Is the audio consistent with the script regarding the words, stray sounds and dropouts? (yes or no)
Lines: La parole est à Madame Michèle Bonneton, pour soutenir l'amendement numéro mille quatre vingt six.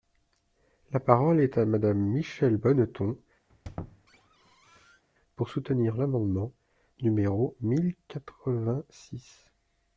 no